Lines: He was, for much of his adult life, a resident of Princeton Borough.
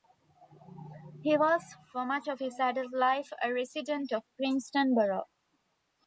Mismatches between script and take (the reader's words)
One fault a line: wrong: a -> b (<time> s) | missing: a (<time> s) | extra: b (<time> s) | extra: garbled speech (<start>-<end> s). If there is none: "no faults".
no faults